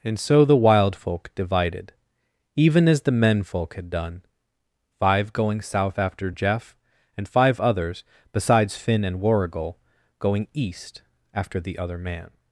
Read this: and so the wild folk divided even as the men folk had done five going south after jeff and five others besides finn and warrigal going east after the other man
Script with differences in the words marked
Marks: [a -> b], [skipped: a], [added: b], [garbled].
and so the wild folk divided even as the men folk had done five going south after jeff and five others besides finn and warrigal going east after the other man